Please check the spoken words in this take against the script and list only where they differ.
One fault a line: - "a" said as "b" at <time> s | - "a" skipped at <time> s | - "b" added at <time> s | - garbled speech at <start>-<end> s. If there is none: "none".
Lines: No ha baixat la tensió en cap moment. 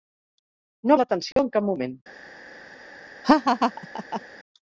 - "baixat" skipped at 1.0 s